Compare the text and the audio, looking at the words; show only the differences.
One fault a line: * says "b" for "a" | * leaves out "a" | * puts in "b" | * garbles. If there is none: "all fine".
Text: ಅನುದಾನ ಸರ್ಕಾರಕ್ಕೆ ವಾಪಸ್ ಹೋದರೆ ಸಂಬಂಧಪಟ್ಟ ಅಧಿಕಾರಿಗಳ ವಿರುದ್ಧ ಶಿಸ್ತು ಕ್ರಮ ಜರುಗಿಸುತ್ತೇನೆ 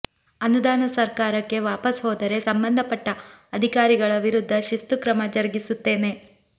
all fine